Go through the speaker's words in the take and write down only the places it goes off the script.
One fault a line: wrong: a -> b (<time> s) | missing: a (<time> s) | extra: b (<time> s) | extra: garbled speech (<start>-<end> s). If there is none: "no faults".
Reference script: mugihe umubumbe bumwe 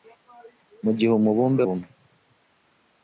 no faults